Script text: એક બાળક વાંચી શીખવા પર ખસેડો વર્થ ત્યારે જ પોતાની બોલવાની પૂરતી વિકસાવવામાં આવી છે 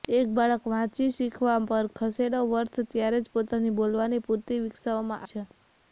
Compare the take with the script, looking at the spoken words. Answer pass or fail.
fail